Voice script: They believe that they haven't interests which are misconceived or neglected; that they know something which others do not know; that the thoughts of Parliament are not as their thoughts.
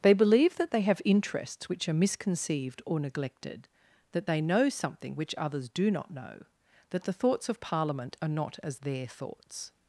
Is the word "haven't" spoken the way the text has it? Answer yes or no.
no